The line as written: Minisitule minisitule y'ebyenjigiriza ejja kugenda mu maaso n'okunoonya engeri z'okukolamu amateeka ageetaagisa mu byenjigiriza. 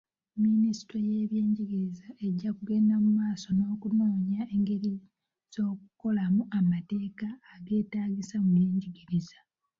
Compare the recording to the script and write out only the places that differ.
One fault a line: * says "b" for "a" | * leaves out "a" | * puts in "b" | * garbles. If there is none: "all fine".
* leaves out "minisitule"